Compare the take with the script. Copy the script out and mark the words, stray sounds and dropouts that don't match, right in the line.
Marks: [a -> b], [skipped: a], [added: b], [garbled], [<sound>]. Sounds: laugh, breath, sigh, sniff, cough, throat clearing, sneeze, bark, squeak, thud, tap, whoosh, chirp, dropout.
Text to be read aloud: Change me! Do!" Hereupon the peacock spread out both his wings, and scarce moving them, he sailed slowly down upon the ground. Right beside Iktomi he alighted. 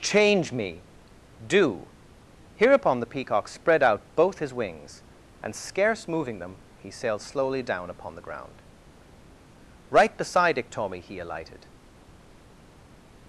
Change me! Do!" Hereupon the peacock spread out both his wings, and scarce moving them, he sailed slowly down upon the ground. Right beside Iktomi he alighted.